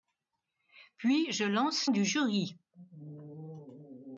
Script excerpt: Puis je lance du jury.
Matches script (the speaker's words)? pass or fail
pass